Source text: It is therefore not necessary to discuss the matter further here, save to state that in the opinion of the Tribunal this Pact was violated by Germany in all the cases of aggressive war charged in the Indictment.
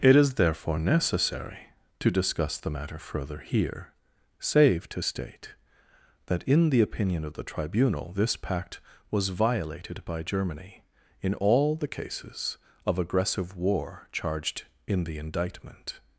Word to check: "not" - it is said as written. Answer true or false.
false